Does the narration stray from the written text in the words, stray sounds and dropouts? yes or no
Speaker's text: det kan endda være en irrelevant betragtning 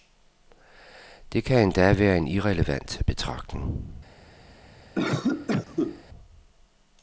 yes